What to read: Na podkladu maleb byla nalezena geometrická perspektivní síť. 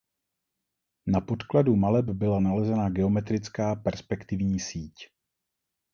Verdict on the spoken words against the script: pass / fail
pass